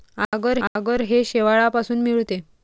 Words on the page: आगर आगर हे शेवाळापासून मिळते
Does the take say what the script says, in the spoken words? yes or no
yes